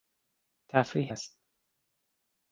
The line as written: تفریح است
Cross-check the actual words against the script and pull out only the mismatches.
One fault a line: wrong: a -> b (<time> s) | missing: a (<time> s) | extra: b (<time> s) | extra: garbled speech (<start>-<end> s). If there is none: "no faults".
no faults